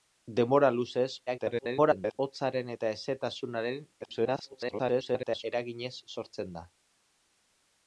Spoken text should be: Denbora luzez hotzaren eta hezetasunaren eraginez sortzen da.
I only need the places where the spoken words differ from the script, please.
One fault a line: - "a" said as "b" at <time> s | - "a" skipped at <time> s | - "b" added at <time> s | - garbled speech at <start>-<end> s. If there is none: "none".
- garbled speech at 1.3-2.2 s
- garbled speech at 4.0-5.4 s